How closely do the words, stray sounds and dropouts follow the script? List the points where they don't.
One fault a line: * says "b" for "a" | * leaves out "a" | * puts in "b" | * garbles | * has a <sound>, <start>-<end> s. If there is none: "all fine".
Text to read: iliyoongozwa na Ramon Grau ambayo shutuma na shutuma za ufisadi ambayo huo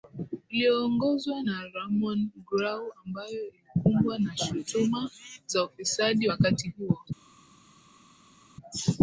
* says "ilikumbwa" for "shutuma"
* says "wakati" for "ambayo"